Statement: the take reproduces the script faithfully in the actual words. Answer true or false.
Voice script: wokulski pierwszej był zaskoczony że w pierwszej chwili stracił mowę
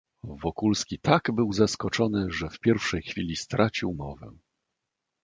false